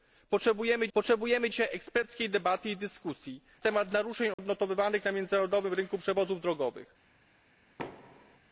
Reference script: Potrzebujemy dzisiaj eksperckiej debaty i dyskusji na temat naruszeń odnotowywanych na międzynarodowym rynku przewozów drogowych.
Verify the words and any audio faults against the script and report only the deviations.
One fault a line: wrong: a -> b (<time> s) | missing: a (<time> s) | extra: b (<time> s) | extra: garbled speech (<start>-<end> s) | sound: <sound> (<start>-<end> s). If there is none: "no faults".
extra: potrzebujemy (0.9 s)
missing: na (3.4 s)
sound: dropout (4.3-4.4 s)
sound: thud (7.8-8.4 s)